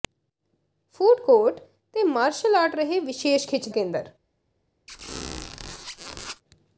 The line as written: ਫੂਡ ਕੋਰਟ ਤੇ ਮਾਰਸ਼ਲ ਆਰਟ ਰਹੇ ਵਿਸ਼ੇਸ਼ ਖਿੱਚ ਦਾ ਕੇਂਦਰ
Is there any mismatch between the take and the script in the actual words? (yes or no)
yes